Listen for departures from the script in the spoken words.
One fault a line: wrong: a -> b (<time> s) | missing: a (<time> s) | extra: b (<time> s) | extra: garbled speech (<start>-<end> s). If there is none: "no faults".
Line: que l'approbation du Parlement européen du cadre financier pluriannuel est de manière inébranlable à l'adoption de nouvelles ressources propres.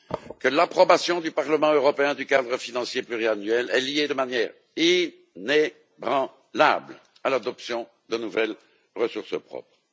extra: liée (3.8 s)